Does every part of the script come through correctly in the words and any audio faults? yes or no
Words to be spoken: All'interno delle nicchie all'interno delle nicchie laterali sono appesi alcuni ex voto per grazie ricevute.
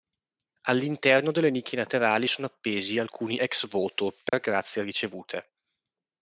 no